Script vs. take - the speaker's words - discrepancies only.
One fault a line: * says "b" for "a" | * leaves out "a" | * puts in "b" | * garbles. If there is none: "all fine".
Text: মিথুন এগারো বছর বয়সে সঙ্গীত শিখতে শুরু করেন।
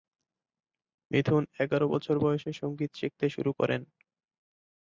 all fine